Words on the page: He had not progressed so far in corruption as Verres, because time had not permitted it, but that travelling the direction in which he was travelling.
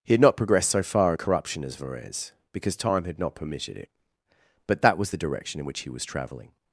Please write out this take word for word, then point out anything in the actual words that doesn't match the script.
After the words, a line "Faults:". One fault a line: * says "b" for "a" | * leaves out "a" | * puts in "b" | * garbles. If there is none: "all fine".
He had not progressed so far in corruption as Verres, because time had not permitted it, but that was the direction in which he was travelling.
Faults:
* says "was" for "travelling"